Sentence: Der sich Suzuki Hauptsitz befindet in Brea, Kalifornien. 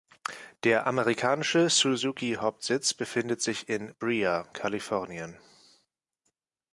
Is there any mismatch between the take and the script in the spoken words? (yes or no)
yes